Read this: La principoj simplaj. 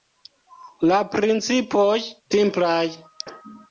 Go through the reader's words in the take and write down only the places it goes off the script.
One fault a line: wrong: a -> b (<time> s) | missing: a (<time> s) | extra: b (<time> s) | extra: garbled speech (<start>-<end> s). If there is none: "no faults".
no faults